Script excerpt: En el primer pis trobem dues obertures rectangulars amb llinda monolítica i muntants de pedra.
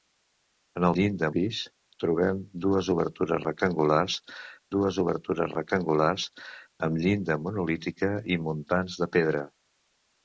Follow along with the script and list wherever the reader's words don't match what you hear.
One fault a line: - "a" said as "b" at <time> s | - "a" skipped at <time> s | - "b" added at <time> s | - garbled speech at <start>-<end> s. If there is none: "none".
- "primer" said as "llinda" at 1.0 s
- "dues obertures rectangulars" added at 4.7 s